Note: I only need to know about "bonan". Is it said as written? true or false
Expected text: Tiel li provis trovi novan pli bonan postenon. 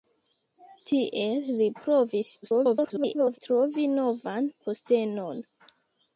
false